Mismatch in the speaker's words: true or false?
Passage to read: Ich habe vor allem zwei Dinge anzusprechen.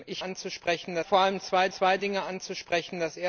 true